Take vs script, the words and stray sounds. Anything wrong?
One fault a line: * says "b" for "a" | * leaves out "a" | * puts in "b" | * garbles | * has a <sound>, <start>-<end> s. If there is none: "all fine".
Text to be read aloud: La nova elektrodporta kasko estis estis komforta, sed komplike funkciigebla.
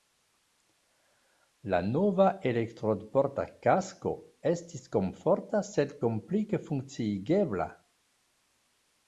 * leaves out "estis"